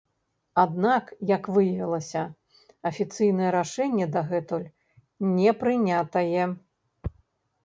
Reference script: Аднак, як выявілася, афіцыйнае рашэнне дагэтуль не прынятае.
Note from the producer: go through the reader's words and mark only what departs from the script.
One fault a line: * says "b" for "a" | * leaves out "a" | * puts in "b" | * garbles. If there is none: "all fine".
all fine